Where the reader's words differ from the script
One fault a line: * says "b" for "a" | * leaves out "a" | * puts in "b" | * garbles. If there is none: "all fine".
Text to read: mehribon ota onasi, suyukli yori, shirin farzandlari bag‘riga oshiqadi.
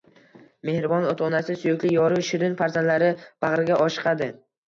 all fine